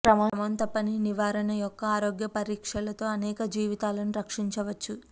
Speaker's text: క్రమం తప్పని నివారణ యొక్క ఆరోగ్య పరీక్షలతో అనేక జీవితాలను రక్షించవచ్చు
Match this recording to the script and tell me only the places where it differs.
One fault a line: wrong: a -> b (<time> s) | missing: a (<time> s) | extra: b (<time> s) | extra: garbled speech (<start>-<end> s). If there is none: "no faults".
no faults